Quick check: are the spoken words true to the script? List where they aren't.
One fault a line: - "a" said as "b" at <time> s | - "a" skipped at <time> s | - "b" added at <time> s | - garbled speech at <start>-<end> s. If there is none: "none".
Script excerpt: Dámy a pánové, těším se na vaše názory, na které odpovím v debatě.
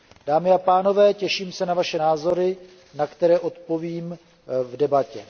none